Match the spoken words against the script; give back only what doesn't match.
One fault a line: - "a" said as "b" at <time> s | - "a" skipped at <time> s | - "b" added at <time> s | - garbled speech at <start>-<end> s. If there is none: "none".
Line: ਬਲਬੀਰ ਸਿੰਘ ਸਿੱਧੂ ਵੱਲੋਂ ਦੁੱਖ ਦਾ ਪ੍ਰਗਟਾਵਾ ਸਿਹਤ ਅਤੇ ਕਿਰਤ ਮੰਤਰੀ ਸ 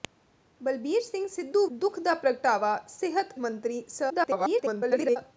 - "ਵੱਲੋਂ" skipped at 1.6 s
- "ਅਤੇ ਕਿਰਤ" skipped at 3.3 s
- garbled speech at 4.1-5.2 s